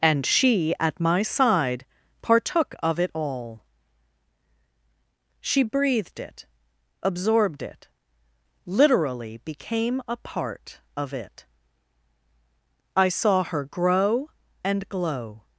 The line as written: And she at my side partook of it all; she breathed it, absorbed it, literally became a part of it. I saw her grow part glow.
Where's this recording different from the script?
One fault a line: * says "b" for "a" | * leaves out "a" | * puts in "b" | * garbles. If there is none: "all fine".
* says "and" for "part"